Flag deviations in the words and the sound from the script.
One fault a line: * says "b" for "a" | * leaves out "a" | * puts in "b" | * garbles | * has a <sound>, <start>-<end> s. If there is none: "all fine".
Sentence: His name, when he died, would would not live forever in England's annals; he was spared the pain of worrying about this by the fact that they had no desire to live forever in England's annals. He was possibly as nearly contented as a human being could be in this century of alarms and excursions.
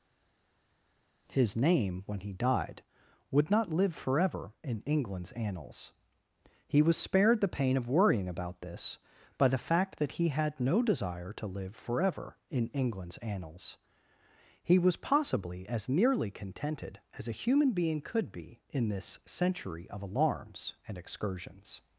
* leaves out "would"
* says "he" for "they"